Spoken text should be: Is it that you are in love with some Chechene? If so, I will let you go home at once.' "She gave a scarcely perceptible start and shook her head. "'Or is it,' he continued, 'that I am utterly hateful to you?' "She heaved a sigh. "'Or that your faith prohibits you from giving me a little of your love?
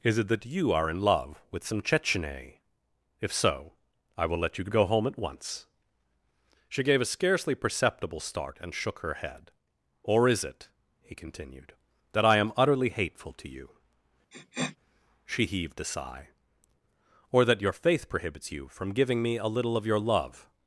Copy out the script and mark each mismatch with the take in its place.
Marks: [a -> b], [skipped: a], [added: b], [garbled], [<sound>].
Is it that you are in love with some Chechene? If so, I will let you go home at once.' "She gave a scarcely perceptible start and shook her head. "'Or is it,' he continued, 'that I am utterly hateful to you?' [sniff] "She heaved a sigh. "'Or that your faith prohibits you from giving me a little of your love?